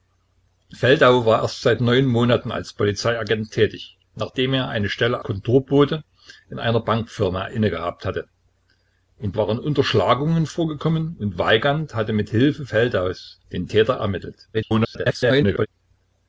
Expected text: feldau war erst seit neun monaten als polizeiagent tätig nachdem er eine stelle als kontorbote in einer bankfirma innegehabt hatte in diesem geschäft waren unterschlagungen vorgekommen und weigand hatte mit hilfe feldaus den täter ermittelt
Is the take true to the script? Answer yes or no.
no